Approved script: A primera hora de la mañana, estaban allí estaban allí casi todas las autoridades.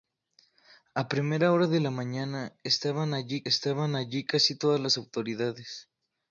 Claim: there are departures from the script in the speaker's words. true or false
false